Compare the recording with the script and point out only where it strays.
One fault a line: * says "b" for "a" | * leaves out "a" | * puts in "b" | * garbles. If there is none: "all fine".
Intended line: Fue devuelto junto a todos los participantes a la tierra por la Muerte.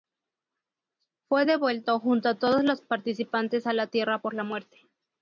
all fine